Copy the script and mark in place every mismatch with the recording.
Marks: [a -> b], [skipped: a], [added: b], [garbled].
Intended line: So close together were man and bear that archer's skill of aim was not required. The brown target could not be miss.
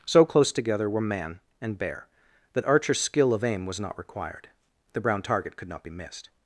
So close together were man and bear that archer's skill of aim was not required. The brown target could not be [miss. -> missed]